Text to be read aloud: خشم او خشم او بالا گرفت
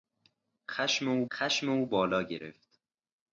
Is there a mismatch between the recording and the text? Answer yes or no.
no